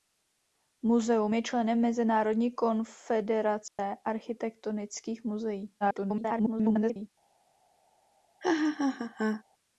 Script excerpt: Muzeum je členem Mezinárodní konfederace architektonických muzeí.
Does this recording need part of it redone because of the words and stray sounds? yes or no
yes